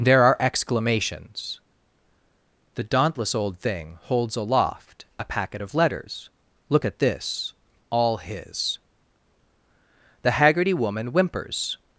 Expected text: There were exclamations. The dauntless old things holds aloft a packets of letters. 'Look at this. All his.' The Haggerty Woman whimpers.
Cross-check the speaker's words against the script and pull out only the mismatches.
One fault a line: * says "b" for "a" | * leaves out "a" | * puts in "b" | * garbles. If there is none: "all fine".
* says "are" for "were"
* says "thing" for "things"
* says "packet" for "packets"